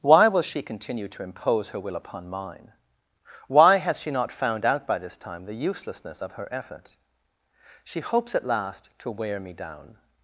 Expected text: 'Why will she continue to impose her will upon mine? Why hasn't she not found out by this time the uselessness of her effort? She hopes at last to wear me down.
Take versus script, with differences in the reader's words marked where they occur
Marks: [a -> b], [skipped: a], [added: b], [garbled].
'Why will she continue to impose her will upon mine? Why [hasn't -> has] she not found out by this time the uselessness of her effort? She hopes at last to wear me down.